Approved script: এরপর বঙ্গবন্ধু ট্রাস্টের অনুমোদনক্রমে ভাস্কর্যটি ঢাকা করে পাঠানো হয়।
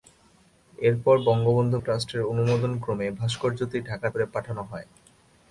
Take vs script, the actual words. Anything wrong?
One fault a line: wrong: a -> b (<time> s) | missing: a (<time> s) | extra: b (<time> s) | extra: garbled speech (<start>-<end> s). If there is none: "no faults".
no faults